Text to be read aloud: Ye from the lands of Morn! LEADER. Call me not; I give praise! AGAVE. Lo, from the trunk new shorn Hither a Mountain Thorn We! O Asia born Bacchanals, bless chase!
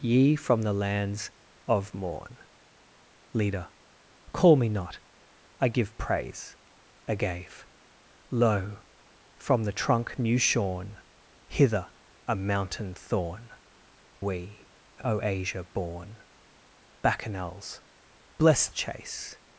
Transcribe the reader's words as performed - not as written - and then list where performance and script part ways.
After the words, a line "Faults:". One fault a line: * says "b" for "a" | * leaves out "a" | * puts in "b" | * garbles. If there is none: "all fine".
Ye from the lands of Morn! LEADER. Call me not; I give praise! AGAVE. Lo, from the trunk new shorn Hither a Mountain Thorn We! O Asia born Bacchanals, bless chase!
Faults:
all fine